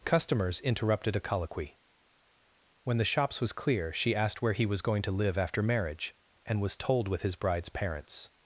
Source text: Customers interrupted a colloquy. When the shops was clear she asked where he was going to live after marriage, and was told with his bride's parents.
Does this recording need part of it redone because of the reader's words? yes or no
no